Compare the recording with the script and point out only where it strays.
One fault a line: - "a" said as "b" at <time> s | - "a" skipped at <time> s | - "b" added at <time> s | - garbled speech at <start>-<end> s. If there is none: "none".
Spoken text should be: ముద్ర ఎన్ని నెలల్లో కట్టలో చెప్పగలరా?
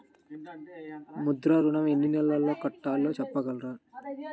- "ఋణం" added at 1.6 s